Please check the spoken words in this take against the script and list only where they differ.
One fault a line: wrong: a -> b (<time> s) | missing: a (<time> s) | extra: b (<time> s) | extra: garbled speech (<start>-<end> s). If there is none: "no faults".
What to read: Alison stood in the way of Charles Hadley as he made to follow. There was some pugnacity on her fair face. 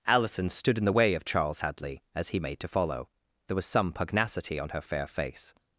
no faults